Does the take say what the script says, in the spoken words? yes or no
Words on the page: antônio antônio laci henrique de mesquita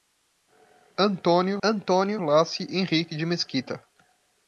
yes